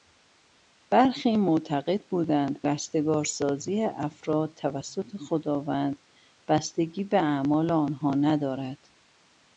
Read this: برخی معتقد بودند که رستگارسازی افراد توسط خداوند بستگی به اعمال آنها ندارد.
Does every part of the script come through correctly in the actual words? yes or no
no